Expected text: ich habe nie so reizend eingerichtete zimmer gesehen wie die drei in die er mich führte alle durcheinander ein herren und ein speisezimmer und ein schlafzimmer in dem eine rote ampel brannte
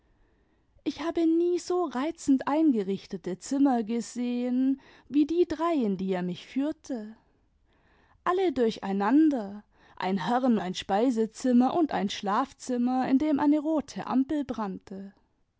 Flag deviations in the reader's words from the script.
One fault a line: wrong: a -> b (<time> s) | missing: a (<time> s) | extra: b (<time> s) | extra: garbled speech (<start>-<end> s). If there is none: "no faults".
missing: und (10.6 s)